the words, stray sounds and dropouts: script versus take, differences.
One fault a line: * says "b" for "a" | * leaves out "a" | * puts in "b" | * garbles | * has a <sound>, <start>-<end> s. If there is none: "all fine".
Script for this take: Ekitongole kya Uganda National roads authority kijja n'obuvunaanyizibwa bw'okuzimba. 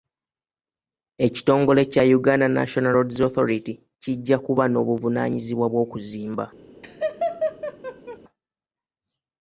* puts in "kuba"
* has a laugh, 6.8-8.2 s